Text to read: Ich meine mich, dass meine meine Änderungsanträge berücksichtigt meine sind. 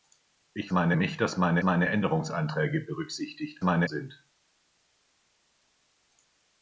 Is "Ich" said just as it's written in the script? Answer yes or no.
yes